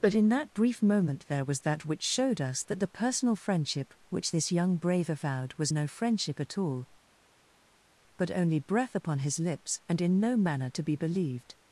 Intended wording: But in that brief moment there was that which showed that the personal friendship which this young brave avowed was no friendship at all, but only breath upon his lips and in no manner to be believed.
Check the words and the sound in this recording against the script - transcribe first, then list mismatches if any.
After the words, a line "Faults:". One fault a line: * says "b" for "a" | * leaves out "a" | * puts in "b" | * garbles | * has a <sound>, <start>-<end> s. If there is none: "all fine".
But in that brief moment there was that which showed us that the personal friendship which this young brave avowed was no friendship at all, but only breath upon his lips and in no manner to be believed.
Faults:
* puts in "us"